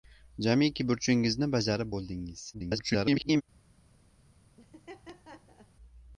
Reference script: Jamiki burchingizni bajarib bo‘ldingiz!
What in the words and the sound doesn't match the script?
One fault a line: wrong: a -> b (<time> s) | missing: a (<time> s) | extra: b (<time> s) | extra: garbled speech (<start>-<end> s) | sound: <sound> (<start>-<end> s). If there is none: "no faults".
extra: garbled speech (2.5-3.4 s)
sound: laugh (4.6-5.7 s)